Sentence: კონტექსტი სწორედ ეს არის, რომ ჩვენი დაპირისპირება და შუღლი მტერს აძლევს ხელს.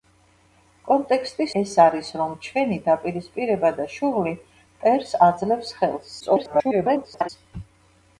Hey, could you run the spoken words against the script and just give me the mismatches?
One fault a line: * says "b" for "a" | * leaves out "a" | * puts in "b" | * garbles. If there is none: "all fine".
* leaves out "სწორედ"
* garbles